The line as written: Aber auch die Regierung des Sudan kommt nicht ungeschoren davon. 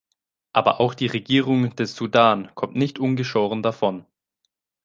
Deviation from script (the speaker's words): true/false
false